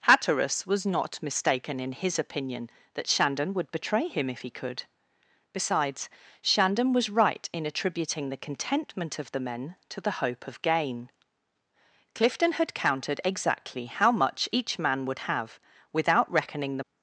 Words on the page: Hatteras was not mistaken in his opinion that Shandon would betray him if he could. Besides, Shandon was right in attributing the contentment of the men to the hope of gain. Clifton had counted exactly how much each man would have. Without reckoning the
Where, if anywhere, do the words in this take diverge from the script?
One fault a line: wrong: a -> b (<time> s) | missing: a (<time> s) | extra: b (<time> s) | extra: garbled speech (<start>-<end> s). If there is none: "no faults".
no faults